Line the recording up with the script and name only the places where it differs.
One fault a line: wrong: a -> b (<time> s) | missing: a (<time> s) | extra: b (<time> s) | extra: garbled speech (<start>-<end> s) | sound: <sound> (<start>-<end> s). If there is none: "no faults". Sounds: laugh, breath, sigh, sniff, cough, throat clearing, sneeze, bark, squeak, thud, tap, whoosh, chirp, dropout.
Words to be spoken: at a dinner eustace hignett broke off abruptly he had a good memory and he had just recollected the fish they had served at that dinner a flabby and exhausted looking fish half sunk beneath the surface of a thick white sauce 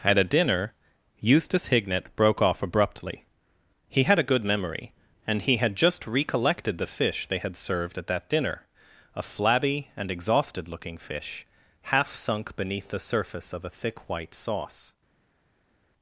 no faults